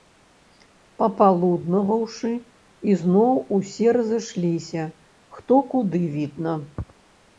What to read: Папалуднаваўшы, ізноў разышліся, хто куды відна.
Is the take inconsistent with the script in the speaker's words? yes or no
yes